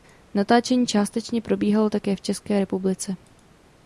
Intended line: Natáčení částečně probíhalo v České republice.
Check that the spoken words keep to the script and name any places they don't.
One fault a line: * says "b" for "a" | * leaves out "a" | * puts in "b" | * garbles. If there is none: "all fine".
* puts in "také"